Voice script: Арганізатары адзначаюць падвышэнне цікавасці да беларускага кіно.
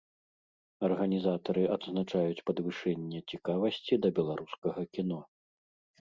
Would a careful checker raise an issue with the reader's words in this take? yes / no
no